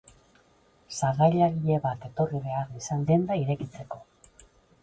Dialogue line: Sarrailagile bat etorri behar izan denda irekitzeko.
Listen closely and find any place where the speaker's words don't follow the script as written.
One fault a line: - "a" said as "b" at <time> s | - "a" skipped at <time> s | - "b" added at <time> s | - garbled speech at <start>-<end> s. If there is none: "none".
none